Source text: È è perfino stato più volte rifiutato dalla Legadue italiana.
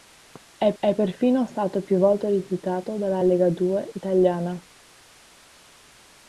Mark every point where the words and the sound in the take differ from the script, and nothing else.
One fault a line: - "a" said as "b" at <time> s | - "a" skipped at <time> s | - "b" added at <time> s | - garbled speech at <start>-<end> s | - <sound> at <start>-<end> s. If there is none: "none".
none